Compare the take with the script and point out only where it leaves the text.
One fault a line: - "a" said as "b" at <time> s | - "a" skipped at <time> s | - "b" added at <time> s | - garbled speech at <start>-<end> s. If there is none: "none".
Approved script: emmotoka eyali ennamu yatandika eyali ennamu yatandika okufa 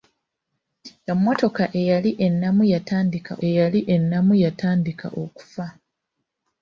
none